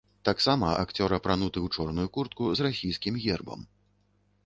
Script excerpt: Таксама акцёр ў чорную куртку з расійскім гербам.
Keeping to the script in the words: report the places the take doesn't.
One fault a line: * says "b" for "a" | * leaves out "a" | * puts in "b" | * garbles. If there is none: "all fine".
* puts in "апрануты"